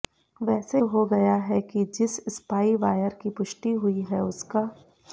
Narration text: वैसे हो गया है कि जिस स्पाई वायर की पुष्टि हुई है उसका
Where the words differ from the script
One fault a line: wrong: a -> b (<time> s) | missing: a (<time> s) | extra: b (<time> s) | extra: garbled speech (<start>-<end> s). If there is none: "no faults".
no faults